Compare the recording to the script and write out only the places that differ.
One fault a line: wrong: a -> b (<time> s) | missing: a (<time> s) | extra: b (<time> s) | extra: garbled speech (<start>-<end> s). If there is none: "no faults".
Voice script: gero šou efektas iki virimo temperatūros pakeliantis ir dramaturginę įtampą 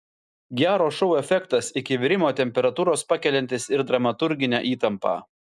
no faults